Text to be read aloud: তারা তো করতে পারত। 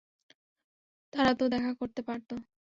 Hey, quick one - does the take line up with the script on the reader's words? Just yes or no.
no